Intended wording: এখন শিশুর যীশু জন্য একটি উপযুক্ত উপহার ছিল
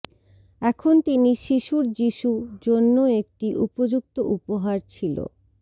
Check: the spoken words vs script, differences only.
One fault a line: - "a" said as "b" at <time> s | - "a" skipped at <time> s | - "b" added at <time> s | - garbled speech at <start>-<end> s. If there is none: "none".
- "তিনি" added at 1.1 s